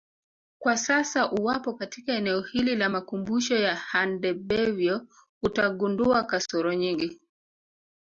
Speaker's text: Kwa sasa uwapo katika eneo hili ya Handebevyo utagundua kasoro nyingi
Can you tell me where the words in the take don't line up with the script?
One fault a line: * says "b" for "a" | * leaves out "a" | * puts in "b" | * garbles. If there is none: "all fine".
* puts in "la makumbusho"